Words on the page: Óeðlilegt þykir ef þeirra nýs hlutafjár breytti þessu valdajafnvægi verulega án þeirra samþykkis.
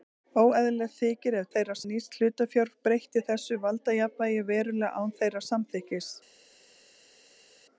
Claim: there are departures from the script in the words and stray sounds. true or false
false